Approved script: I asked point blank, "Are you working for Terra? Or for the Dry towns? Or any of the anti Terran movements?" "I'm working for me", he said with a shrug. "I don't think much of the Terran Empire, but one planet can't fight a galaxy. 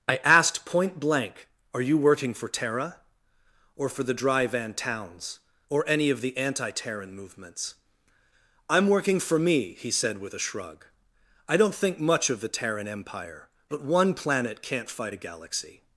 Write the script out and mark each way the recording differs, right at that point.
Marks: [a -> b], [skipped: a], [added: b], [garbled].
I asked point blank, "Are you working for Terra? Or for the Dry [added: van] towns? Or any of the anti Terran movements?" "I'm working for me", he said with a shrug. "I don't think much of the Terran Empire, but one planet can't fight a galaxy.